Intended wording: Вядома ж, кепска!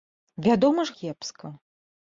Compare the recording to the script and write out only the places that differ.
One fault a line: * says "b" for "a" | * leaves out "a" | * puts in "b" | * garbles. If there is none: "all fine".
all fine